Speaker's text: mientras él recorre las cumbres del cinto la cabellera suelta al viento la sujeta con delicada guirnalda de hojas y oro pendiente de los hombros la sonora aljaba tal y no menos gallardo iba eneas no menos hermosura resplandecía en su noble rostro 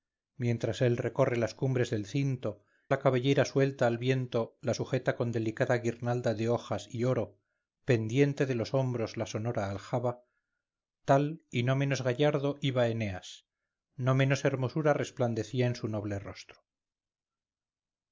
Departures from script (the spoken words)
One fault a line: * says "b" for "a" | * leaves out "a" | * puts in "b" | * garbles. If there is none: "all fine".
all fine